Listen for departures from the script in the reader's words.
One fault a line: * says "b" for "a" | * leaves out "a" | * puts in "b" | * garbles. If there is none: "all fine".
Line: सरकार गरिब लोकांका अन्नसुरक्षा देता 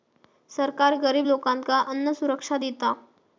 all fine